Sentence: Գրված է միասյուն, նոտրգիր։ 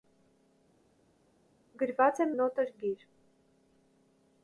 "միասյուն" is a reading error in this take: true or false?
true